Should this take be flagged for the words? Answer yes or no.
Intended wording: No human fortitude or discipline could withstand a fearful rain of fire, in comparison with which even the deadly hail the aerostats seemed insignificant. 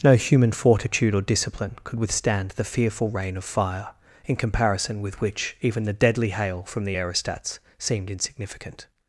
yes